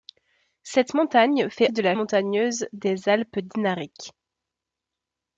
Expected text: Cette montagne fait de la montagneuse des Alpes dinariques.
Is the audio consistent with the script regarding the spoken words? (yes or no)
yes